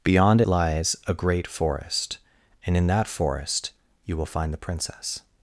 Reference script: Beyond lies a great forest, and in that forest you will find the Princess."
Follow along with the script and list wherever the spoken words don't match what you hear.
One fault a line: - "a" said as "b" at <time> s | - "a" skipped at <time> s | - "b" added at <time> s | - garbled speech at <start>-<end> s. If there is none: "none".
none